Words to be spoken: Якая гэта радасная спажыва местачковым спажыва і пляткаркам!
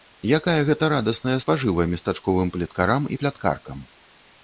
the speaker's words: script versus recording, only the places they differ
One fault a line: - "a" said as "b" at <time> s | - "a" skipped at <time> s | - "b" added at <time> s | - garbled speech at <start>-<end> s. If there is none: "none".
- "спажыва" said as "плеткарам" at 2.6 s